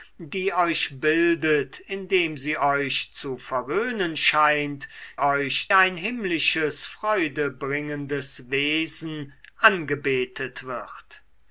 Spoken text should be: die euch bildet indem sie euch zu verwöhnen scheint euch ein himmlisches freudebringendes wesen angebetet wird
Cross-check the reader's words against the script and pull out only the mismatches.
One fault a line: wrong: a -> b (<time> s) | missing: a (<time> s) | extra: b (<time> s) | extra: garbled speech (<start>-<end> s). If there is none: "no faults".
no faults